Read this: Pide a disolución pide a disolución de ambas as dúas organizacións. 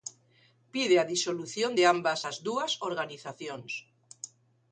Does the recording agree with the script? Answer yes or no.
no